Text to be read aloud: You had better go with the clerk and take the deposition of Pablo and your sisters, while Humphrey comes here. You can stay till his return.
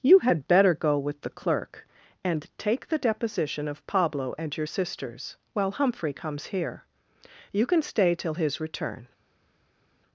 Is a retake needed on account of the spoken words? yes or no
no